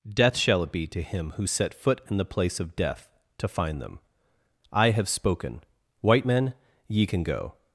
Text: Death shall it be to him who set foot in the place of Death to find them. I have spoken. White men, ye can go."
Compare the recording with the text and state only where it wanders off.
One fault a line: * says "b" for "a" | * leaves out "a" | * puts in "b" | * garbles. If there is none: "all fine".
all fine